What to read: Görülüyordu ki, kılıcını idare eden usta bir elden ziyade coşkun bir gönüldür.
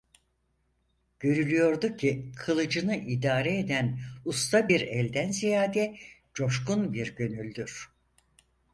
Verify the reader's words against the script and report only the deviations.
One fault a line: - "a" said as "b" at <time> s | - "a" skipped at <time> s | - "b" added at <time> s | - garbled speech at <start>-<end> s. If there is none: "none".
none